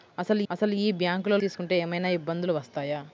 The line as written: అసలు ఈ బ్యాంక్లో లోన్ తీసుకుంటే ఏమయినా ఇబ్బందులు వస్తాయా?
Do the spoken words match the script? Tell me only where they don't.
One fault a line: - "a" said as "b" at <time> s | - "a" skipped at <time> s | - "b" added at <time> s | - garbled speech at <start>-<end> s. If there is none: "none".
- "అసలు" added at 0.5 s
- "లోన్" skipped at 1.4 s